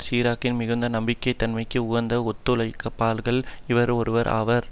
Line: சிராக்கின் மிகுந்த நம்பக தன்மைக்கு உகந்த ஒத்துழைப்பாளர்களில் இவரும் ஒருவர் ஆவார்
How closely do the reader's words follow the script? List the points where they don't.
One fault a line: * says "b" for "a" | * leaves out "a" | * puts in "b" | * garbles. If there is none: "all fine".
all fine